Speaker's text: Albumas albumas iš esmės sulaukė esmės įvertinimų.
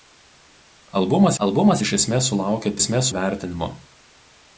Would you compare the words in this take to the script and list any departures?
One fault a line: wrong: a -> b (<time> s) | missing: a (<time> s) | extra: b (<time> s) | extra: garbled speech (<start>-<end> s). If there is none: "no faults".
no faults